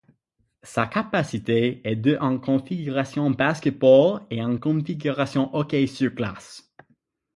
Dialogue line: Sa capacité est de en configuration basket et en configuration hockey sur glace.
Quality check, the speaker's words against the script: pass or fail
fail